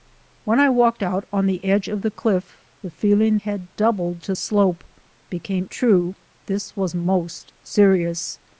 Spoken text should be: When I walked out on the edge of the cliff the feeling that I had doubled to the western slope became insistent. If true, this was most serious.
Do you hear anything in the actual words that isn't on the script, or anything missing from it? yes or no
yes